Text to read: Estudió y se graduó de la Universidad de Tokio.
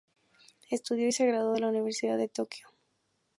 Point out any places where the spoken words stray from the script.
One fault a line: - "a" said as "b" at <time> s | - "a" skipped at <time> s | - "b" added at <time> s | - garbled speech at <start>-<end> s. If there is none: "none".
none